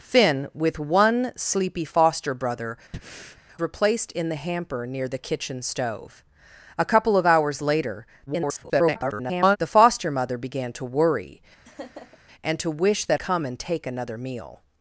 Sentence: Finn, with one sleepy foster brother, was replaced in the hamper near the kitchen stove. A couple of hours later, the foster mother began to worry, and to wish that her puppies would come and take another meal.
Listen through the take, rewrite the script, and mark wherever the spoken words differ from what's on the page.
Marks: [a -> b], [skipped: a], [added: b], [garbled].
Finn, with one sleepy foster brother, [skipped: was] replaced in the hamper near the kitchen stove. A couple of hours later, [garbled] the foster mother began to worry, and to wish that [skipped: her puppies would] come and take another meal.